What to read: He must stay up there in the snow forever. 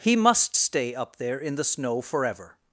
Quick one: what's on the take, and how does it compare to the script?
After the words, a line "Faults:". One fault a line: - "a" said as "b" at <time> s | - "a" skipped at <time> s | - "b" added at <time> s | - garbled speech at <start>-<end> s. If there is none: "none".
He must stay up there in the snow forever.
Faults:
none